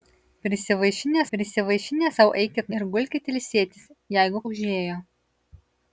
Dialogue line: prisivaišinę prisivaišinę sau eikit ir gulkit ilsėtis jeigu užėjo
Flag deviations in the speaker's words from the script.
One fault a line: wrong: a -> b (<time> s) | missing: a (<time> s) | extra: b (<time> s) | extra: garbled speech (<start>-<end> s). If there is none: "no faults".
no faults